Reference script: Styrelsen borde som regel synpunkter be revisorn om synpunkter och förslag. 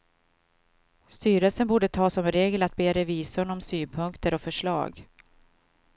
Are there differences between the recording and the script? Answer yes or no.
yes